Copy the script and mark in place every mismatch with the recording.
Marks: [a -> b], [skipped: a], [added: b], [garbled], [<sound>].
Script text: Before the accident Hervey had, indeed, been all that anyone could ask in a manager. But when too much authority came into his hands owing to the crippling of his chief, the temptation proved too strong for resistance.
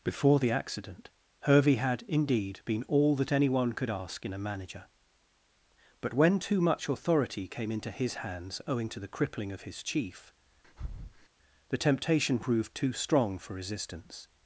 Before the accident Hervey had, indeed, been all that anyone could ask in a manager. But when too much authority came into his hands owing to the crippling of his chief, [breath] the temptation proved too strong for resistance.